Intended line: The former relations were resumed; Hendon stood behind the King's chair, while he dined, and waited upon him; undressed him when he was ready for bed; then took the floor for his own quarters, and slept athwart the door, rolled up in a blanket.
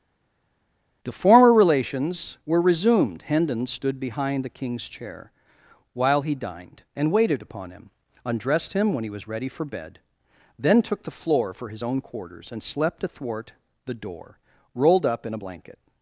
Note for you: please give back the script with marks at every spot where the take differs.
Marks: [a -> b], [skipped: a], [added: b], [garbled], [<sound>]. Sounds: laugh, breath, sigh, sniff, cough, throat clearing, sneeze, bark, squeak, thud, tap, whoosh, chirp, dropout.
The former relations were resumed; Hendon stood behind the King's chair, while he dined, and waited upon him; undressed him when he was ready for bed; then took the floor for his own quarters, and slept athwart the door, rolled up in a blanket.